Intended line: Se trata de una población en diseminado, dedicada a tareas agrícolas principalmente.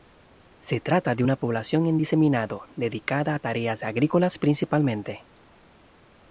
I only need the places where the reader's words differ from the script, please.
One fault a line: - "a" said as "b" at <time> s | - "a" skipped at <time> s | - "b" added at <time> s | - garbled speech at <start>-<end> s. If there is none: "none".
none